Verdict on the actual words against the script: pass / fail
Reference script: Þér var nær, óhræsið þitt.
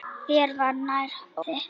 fail